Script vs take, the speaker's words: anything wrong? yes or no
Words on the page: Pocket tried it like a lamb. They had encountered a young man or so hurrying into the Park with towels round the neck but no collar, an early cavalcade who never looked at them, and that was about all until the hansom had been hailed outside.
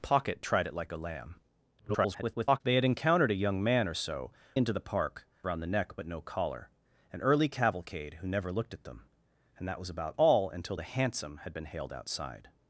yes